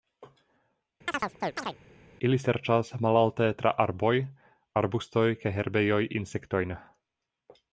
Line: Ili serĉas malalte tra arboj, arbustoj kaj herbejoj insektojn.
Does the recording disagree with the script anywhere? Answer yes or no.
no